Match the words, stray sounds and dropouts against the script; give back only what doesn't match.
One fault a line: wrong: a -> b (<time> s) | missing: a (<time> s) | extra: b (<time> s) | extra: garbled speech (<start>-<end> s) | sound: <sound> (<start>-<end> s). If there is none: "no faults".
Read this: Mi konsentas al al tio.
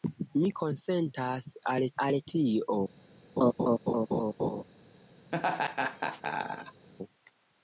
sound: laugh (3.4-4.6 s)
sound: laugh (5.3-6.9 s)